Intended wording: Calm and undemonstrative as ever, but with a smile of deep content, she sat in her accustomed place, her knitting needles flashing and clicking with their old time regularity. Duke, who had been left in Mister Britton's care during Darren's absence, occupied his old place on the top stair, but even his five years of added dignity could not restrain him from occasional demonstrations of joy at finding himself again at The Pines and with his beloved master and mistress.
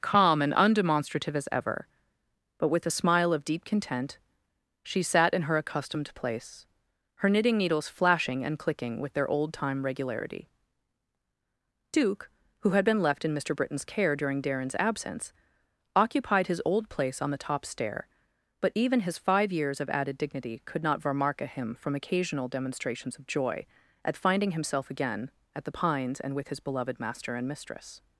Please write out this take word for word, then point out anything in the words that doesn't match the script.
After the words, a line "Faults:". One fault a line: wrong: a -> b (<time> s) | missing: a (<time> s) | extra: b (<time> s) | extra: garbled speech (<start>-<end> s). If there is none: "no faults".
Calm and undemonstrative as ever, but with a smile of deep content, she sat in her accustomed place, her knitting needles flashing and clicking with their old time regularity. Duke, who had been left in Mister Britton's care during Darren's absence, occupied his old place on the top stair, but even his five years of added dignity could not varmarka him from occasional demonstrations of joy at finding himself again at The Pines and with his beloved master and mistress.
Faults:
wrong: restrain -> varmarka (21.0 s)